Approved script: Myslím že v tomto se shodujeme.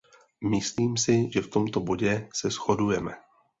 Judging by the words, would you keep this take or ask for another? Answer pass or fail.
fail